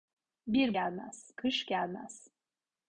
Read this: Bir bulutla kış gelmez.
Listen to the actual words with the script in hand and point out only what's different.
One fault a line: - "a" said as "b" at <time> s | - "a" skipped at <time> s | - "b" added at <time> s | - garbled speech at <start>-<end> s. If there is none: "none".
- "bulutla" said as "gelmez" at 0.7 s